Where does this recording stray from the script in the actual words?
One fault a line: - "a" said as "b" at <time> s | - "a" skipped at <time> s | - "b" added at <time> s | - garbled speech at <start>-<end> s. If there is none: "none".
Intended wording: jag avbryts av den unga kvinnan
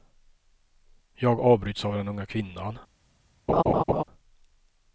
none